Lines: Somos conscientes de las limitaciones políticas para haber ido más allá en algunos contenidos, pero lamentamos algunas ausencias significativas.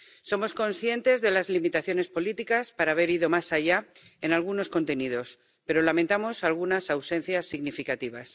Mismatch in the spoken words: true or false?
false